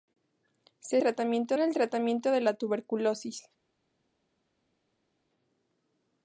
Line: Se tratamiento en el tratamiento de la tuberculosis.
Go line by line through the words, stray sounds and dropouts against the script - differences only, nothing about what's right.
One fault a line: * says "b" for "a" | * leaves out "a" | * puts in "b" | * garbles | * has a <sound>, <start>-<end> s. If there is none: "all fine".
all fine